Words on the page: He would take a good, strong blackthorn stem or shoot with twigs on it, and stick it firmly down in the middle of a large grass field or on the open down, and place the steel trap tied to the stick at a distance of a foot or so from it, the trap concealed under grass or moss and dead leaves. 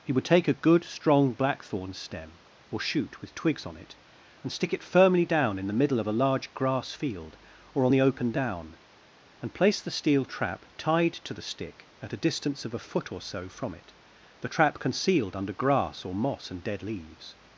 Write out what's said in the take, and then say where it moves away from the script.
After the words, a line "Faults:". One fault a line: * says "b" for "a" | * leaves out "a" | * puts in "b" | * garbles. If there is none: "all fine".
He would take a good, strong blackthorn stem or shoot with twigs on it, and stick it firmly down in the middle of a large grass field or on the open down, and place the steel trap tied to the stick at a distance of a foot or so from it, the trap concealed under grass or moss and dead leaves.
Faults:
all fine